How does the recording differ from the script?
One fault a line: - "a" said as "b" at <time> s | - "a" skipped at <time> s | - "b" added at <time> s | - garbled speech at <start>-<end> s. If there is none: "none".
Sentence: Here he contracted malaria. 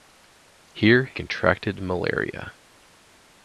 - "he" skipped at 1.1 s